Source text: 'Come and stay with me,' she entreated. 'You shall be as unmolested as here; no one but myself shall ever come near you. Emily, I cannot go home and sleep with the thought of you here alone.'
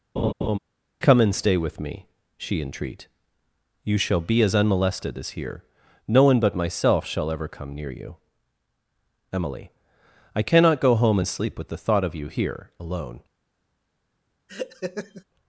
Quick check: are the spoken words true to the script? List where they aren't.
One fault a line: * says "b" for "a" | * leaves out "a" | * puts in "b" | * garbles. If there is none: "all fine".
* says "entreat" for "entreated"